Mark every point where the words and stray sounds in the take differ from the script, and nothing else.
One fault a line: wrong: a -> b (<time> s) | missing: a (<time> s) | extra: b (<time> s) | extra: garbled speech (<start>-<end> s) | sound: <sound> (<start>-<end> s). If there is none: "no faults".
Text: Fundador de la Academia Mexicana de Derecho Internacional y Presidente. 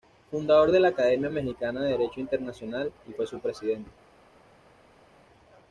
extra: fue su (3.1 s)